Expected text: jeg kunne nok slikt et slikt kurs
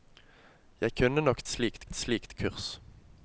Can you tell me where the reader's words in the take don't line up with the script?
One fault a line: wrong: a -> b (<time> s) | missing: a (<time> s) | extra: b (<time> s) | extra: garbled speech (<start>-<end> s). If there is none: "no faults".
no faults